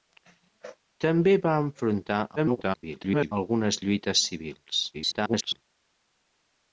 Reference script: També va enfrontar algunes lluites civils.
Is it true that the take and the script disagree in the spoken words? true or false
true